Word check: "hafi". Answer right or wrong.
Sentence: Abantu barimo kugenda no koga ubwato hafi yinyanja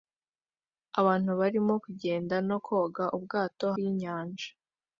wrong